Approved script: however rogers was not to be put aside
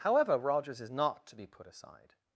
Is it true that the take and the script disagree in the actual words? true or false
true